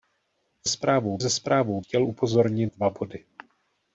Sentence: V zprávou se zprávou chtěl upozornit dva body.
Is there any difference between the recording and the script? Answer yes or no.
no